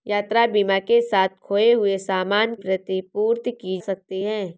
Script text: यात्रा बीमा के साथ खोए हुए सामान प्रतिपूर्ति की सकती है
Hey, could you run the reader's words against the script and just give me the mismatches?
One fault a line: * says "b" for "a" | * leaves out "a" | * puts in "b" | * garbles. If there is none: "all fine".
all fine